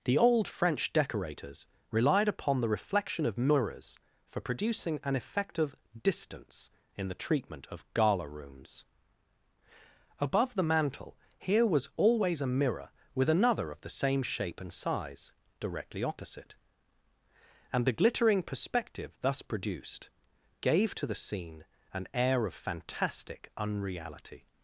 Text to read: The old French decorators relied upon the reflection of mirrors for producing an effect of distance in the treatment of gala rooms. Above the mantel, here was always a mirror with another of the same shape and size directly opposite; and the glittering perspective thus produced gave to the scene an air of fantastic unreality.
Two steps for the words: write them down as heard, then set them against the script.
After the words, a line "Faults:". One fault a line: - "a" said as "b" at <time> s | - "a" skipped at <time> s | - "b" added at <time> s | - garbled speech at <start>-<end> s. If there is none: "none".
The old French decorators relied upon the reflection of mirrors for producing an effect of distance in the treatment of gala rooms. Above the mantel, here was always a mirror with another of the same shape and size directly opposite; and the glittering perspective thus produced gave to the scene an air of fantastic unreality.
Faults:
none